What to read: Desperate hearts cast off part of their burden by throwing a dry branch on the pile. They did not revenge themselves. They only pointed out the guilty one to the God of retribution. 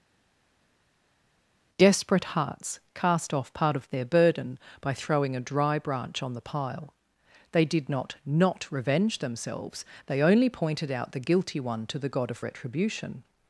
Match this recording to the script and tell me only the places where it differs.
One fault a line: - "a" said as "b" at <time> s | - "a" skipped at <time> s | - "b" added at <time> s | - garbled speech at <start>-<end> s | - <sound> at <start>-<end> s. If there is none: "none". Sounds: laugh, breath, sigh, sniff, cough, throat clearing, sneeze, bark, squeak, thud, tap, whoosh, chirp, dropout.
- "not" added at 8.3 s